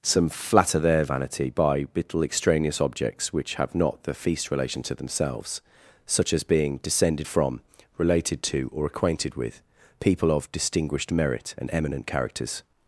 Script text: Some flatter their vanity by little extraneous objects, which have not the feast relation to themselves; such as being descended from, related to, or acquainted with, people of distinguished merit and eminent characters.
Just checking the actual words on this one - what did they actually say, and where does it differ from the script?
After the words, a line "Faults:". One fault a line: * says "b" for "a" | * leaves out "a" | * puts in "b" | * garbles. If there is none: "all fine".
Some flatter their vanity by little extraneous objects, which have not the feast relation to themselves; such as being descended from, related to, or acquainted with, people of distinguished merit and eminent characters.
Faults:
all fine